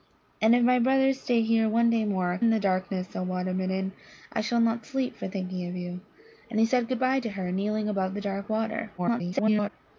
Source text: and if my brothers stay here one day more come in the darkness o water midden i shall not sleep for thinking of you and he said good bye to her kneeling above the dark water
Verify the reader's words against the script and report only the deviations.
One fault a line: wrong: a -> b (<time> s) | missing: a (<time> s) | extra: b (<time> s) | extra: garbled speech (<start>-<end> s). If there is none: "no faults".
missing: come (2.4 s)
extra: garbled speech (9.0-9.7 s)